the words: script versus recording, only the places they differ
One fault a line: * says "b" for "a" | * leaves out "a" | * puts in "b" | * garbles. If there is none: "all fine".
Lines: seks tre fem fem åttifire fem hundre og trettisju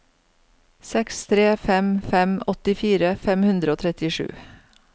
all fine